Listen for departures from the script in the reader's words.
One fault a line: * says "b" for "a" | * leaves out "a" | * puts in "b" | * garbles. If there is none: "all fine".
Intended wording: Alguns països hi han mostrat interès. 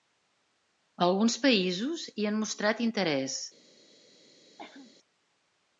all fine